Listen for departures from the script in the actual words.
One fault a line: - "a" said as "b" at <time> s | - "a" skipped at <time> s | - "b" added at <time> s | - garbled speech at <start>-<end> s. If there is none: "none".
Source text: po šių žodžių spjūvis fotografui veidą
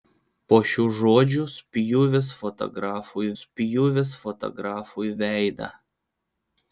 - "spjūvis fotografui" added at 3.4 s